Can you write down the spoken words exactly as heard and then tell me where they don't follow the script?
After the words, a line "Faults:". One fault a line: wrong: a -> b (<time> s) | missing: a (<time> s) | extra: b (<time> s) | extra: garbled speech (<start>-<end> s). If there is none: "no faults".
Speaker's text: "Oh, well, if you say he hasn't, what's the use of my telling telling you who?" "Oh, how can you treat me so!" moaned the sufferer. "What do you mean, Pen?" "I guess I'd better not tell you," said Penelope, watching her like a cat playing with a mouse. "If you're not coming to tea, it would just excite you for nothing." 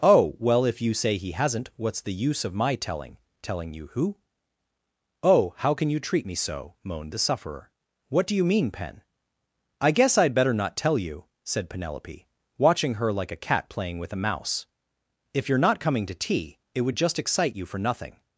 "Oh, well, if you say he hasn't, what's the use of my telling telling you who?" "Oh, how can you treat me so!" moaned the sufferer. "What do you mean, Pen?" "I guess I'd better not tell you," said Penelope, watching her like a cat playing with a mouse. "If you're not coming to tea, it would just excite you for nothing."
Faults:
no faults